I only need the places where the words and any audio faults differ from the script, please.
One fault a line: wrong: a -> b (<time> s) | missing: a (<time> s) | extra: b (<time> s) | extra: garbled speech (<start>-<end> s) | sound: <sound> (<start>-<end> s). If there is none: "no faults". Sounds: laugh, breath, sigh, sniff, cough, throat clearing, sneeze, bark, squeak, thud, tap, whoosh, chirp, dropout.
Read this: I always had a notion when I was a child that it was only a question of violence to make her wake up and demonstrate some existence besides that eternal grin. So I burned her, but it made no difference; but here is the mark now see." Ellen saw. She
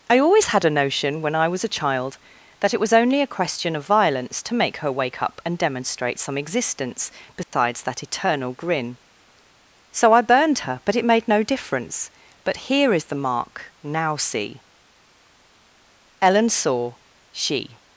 sound: dropout (7.4-7.5 s)